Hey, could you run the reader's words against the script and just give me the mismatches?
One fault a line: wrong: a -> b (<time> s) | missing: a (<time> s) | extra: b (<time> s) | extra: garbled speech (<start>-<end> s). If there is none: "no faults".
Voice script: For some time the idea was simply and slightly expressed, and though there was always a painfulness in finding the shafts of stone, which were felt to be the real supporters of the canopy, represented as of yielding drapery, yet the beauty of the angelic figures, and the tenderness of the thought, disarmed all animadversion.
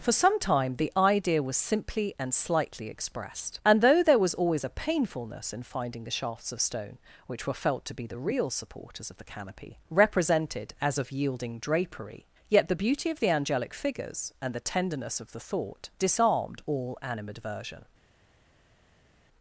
no faults